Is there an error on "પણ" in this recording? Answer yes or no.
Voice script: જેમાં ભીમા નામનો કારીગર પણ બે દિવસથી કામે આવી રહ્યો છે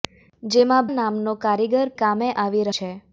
yes